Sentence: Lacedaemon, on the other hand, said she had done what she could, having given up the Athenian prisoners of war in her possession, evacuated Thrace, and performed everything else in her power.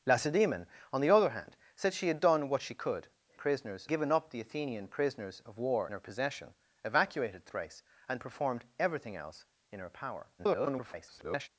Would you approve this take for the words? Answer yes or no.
no